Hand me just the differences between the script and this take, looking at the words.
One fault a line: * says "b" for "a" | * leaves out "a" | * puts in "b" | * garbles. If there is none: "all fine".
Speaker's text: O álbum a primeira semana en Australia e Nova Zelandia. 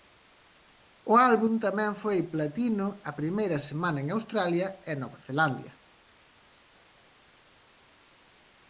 * puts in "tamén foi platino"